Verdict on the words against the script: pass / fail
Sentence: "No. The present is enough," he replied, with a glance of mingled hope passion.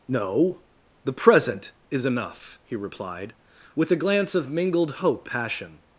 pass